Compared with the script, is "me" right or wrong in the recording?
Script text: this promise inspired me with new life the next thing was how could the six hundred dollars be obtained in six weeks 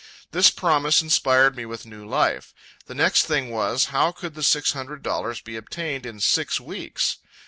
right